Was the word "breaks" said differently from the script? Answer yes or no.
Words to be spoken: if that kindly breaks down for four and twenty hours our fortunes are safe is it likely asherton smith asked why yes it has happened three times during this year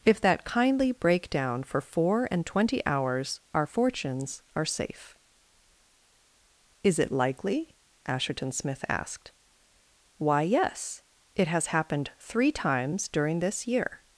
yes